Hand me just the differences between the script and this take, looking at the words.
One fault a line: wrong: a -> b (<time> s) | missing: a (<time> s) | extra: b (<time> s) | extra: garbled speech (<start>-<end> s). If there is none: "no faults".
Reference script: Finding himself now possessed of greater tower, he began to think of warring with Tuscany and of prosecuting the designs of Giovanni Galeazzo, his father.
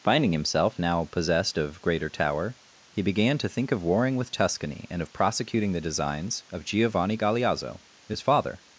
no faults